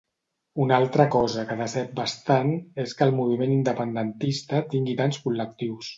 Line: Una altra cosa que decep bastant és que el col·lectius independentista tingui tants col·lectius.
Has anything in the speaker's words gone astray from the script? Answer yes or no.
yes